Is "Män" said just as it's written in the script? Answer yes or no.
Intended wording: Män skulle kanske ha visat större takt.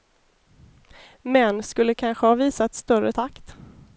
yes